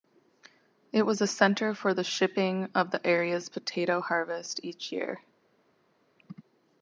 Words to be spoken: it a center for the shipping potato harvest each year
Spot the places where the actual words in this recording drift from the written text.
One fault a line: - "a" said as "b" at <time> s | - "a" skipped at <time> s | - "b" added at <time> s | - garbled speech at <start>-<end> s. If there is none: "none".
- "was" added at 1.1 s
- "of the area's" added at 2.7 s